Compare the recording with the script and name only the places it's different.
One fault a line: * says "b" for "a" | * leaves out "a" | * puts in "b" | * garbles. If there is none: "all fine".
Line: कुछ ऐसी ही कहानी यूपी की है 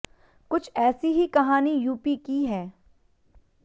all fine